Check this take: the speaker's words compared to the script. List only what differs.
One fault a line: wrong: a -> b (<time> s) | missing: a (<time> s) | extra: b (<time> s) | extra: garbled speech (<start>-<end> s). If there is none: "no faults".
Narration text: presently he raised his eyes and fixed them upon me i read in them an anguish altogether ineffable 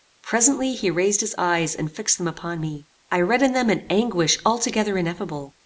no faults